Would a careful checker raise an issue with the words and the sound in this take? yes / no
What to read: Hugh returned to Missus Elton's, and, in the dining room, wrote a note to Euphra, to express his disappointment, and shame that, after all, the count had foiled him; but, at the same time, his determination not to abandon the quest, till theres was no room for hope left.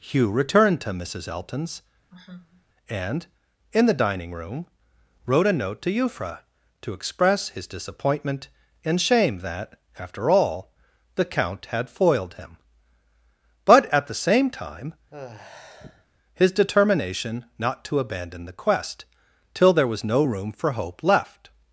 yes